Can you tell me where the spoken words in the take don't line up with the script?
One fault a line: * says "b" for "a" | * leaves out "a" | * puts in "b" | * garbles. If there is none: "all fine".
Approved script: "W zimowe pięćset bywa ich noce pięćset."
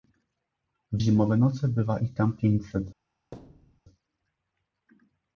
* says "noce" for "pięćset"
* says "tam" for "noce"